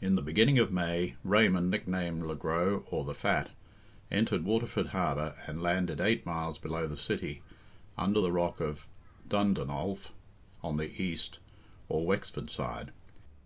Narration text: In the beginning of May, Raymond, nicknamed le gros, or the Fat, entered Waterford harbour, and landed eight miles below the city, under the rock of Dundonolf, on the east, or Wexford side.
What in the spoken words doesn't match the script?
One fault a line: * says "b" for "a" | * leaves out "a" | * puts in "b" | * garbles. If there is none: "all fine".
all fine